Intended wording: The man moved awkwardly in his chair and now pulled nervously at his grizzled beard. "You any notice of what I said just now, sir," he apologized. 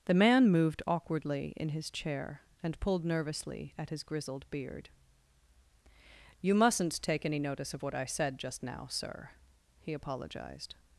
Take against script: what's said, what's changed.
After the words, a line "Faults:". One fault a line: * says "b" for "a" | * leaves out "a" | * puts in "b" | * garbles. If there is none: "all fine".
The man moved awkwardly in his chair and pulled nervously at his grizzled beard. "You mustn't take any notice of what I said just now, sir," he apologized.
Faults:
* leaves out "now"
* puts in "mustn't take"